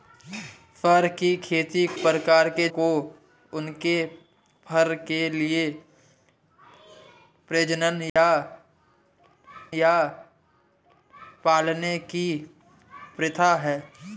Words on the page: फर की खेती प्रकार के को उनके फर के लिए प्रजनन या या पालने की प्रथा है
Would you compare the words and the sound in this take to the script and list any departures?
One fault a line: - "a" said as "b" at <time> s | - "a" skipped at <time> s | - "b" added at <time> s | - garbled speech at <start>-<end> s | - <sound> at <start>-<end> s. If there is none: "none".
- dropout at 8.1-8.2 s